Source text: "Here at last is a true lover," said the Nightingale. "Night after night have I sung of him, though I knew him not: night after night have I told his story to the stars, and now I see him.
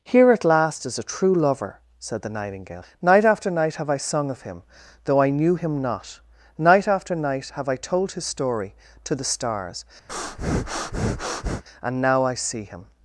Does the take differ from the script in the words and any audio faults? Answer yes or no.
yes